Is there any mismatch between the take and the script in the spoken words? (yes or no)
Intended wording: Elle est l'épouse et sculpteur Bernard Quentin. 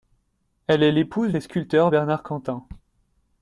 no